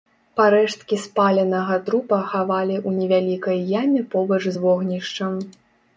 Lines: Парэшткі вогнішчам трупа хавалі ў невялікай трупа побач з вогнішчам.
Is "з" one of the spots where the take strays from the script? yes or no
no